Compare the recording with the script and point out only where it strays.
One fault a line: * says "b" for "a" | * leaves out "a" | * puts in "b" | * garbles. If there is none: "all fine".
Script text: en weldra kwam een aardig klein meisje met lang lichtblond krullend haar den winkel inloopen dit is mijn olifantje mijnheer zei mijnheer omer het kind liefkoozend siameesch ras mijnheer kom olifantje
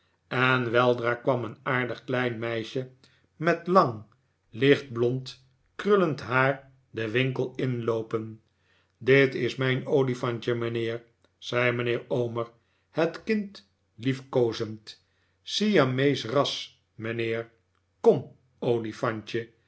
all fine